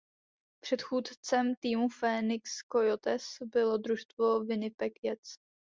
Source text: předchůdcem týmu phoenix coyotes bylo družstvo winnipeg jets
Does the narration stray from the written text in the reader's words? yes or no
no